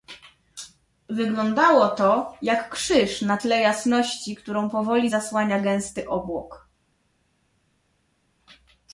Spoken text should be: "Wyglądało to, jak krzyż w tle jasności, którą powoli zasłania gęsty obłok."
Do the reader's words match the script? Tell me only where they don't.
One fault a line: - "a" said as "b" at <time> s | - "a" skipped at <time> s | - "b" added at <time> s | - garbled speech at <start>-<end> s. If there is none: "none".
- "w" said as "na" at 3.2 s